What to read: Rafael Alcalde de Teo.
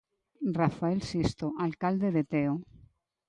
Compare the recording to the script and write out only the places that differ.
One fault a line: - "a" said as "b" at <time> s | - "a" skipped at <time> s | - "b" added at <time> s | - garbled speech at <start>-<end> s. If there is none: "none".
- "Sisto" added at 1.0 s